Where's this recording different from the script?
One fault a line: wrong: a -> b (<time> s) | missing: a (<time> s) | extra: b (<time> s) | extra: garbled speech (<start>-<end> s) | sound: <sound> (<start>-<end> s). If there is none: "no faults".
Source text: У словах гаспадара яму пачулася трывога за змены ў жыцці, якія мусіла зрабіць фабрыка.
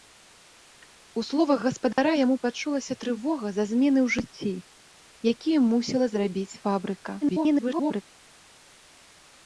sound: dropout (1.9-2.0 s)
extra: garbled speech (7.2-8.0 s)